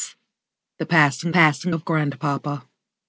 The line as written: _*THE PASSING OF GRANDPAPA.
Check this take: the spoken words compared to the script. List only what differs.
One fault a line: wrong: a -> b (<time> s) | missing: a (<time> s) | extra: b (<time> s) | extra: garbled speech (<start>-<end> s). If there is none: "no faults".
extra: PASSING (1.3 s)